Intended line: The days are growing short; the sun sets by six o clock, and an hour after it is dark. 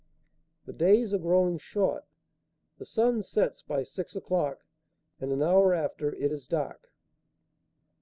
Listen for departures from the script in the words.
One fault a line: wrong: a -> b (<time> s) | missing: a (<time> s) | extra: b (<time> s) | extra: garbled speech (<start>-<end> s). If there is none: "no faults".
no faults